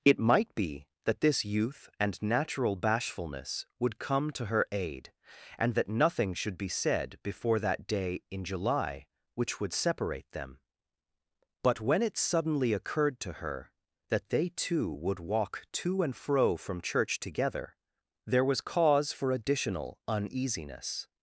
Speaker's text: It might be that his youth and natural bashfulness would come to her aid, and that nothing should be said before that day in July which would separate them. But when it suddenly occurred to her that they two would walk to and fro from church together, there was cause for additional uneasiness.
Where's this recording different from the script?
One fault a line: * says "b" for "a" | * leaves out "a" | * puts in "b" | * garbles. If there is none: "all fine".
* says "this" for "his"